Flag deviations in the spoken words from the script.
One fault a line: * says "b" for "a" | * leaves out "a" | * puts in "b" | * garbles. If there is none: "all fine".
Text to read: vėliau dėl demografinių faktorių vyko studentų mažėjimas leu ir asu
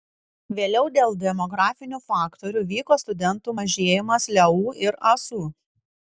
all fine